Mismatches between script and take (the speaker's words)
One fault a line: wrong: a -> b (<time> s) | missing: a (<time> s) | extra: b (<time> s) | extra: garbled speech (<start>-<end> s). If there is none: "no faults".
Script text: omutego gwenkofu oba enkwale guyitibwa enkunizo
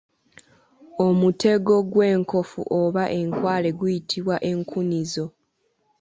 no faults